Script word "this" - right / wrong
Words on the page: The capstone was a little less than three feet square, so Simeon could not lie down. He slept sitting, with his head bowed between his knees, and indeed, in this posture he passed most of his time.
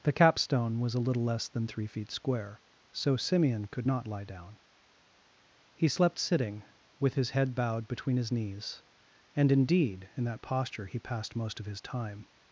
wrong